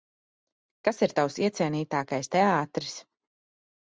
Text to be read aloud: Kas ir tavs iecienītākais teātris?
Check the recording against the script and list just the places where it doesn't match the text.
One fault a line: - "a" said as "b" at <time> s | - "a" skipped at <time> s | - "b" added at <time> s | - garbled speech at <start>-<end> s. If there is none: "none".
none